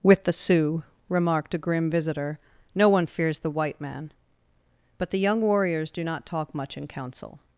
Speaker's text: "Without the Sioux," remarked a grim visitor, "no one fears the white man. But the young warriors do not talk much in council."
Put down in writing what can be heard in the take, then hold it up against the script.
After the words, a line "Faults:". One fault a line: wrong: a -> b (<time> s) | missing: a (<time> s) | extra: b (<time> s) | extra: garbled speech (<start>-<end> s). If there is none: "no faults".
"With the Sioux," remarked a grim visitor, "no one fears the white man. But the young warriors do not talk much in council."
Faults:
wrong: Without -> With (0.0 s)